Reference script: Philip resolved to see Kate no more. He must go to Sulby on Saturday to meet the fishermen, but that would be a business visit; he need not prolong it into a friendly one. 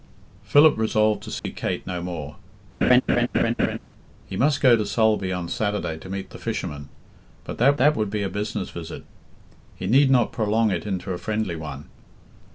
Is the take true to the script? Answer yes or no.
no